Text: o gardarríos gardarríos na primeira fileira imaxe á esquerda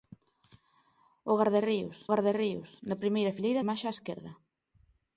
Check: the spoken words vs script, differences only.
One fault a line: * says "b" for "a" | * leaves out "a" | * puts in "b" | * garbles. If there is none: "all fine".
all fine